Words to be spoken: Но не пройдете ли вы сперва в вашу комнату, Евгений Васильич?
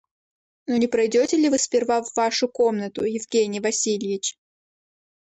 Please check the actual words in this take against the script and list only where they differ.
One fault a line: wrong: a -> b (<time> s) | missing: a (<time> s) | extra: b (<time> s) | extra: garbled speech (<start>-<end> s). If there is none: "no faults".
no faults